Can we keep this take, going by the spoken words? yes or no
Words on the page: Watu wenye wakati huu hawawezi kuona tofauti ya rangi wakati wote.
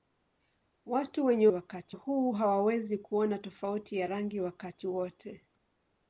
yes